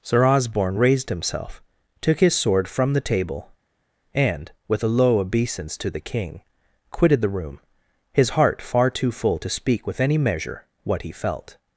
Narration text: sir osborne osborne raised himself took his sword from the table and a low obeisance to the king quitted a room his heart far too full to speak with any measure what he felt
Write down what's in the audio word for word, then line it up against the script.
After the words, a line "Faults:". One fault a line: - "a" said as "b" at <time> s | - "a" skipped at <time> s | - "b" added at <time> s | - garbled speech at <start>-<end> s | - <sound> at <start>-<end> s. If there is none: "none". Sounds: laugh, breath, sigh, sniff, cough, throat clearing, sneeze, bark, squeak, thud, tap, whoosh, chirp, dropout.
sir osborne raised himself took his sword from the table and with a low obeisance to the king quitted the room his heart far too full to speak with any measure what he felt
Faults:
- "osborne" skipped at 0.8 s
- "with" added at 4.7 s
- "a" said as "the" at 7.2 s